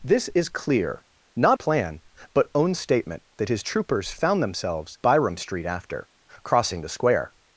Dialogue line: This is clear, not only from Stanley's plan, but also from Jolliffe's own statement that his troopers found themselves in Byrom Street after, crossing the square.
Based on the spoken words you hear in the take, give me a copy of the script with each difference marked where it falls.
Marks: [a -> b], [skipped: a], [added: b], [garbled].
This is clear, not [skipped: only from Stanley's] plan, but [skipped: also from Jolliffe's] own statement that his troopers found themselves [skipped: in] Byrom Street after, crossing the square.